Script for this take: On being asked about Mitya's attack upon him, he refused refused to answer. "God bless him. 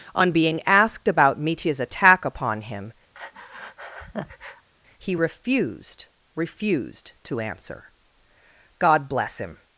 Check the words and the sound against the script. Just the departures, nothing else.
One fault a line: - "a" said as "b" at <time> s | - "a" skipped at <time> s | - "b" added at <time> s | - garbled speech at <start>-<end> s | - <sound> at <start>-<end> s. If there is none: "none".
- breath at 3.1-4.7 s